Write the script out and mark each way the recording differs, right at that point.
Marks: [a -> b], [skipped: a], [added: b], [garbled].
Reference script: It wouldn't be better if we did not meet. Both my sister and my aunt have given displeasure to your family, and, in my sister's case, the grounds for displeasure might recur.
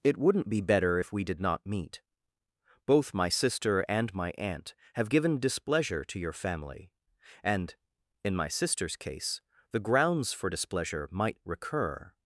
It wouldn't be better if we did not meet. Both my sister and my aunt have given displeasure to your family, and, in my sister's case, the grounds for displeasure might recur.